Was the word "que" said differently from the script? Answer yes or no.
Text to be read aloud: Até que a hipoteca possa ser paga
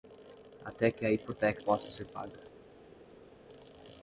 no